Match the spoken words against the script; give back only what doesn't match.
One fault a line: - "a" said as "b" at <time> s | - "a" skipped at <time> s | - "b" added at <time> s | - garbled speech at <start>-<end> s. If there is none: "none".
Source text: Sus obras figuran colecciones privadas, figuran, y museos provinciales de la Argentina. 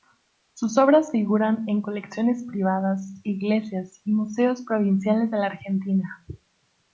- "en" added at 1.7 s
- "figuran" said as "iglesias" at 3.2 s